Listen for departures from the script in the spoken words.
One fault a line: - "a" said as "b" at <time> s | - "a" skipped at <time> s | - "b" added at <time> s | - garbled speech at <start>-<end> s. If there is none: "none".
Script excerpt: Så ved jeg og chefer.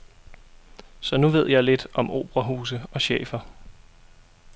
- "nu" added at 1.2 s
- "lidt om operahuse" added at 1.6 s